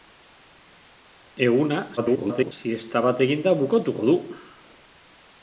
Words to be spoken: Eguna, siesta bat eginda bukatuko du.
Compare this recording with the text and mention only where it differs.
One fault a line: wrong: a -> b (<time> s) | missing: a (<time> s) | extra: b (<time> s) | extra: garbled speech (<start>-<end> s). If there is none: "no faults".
extra: garbled speech (2.0-2.5 s)